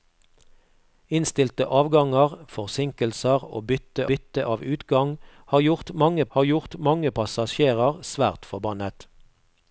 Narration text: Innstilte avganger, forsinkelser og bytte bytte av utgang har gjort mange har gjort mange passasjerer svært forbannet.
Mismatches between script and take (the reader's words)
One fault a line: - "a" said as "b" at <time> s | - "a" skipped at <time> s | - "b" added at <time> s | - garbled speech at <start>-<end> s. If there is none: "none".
none